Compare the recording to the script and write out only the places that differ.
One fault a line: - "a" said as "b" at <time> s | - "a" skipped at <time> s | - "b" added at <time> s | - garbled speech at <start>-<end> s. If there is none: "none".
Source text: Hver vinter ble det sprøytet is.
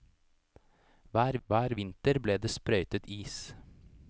- "hver" added at 1.5 s